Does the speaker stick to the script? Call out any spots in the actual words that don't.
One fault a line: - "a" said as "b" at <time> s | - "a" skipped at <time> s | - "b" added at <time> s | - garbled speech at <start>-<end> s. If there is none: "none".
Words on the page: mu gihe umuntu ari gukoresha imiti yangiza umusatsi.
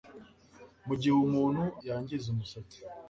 - "ari gukoresha imiti" skipped at 1.6 s